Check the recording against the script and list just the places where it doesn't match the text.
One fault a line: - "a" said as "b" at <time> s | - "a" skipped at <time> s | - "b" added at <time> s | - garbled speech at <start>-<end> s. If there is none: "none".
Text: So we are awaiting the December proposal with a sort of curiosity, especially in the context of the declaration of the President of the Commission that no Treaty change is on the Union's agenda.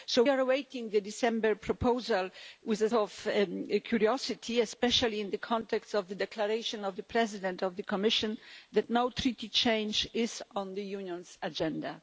- "we" skipped at 0.2 s
- "sort" skipped at 2.9 s